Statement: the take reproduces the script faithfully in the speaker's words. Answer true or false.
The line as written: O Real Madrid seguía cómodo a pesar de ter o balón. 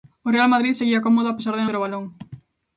true